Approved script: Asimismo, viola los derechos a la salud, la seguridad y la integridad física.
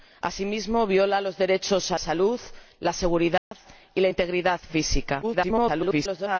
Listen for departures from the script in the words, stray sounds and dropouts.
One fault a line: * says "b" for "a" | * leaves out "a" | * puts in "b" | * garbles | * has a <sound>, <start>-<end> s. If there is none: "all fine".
* leaves out "la"
* has a dropout, 3.4-3.5 s
* garbles